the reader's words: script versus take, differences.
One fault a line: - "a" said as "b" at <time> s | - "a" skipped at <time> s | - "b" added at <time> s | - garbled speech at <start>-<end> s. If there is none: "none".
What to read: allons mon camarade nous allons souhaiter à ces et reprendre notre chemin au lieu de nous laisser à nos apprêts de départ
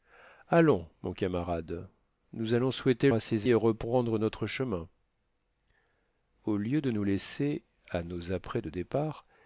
none